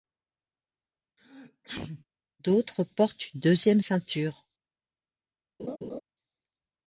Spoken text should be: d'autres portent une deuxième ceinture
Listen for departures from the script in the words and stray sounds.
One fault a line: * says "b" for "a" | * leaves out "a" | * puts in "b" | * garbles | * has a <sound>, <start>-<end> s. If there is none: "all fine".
* has a sneeze, 1.2-2.1 s
* has a laugh, 5.6-6.0 s